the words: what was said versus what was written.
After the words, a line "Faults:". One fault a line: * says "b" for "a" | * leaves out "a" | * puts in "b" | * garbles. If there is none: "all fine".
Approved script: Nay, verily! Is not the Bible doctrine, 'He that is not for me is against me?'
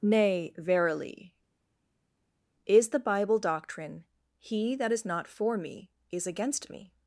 Nay, verily! Is the Bible doctrine, 'He that is not for me is against me?'
Faults:
* leaves out "not"